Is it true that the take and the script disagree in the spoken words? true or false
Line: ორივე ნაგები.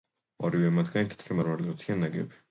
true